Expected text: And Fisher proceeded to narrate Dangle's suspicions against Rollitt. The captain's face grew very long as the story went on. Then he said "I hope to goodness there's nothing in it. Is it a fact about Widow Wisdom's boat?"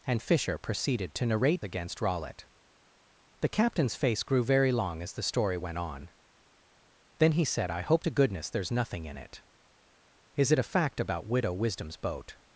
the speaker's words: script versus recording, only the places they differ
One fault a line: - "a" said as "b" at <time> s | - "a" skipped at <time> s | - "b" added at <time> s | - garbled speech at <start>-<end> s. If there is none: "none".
- "Dangle's suspicions" skipped at 1.6 s